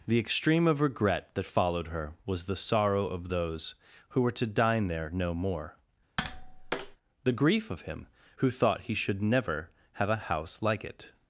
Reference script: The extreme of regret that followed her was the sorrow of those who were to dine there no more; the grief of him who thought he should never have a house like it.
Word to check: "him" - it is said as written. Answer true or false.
true